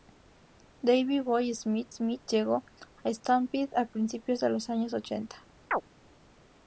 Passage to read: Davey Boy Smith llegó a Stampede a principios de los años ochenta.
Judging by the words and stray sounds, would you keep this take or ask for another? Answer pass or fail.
fail